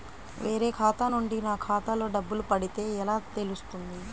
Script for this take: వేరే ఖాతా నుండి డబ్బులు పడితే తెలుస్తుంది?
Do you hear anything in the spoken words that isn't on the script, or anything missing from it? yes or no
yes